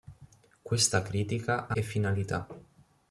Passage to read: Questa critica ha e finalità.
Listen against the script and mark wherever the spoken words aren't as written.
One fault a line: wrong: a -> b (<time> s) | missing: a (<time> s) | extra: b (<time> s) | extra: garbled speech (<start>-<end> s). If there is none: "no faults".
no faults